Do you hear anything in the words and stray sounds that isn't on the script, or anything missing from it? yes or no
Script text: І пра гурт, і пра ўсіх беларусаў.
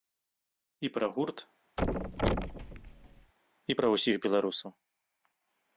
yes